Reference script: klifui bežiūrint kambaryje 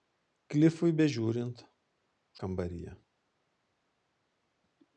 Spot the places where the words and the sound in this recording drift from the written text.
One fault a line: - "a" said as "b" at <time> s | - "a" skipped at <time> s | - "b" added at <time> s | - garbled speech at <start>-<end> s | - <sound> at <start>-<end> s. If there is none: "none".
none